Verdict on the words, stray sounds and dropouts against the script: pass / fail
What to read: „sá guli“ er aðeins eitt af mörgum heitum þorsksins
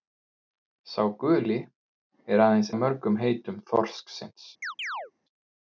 fail